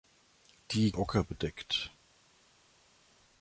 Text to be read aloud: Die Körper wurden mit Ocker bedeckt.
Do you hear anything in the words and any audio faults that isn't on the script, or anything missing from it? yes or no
yes